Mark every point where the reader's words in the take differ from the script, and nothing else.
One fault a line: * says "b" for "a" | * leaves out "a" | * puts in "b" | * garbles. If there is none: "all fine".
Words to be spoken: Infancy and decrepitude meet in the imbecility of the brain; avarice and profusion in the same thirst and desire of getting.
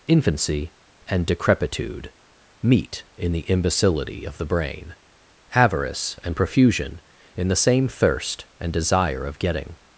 all fine